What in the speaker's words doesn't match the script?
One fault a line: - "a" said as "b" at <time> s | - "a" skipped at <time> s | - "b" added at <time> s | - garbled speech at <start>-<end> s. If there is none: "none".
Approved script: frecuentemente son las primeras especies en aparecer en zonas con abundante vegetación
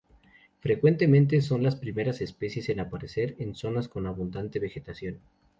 none